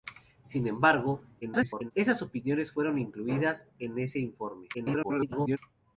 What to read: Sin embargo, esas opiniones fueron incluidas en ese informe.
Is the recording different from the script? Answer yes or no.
yes